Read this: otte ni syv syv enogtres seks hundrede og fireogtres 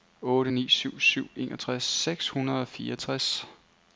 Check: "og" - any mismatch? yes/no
no